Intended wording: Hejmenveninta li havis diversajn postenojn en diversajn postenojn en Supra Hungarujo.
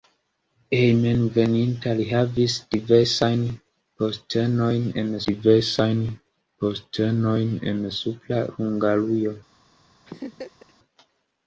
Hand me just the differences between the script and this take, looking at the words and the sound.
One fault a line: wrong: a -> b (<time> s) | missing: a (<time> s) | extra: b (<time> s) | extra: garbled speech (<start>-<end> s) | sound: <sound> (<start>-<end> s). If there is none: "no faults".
sound: laugh (10.1-10.7 s)